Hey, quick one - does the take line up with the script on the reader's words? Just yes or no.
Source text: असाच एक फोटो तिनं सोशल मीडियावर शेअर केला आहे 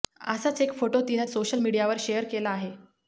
yes